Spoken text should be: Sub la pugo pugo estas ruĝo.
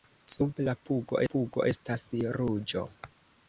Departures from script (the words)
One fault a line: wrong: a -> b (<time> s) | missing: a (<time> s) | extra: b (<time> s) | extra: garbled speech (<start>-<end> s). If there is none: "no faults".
no faults